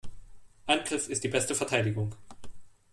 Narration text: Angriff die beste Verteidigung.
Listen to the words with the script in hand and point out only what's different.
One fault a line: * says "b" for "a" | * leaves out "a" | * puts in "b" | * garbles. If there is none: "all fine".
* puts in "ist"